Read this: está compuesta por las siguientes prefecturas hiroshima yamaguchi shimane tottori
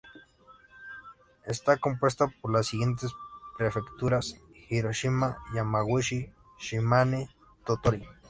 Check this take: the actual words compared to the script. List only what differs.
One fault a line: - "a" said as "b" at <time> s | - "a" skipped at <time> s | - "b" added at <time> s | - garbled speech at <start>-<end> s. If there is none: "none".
none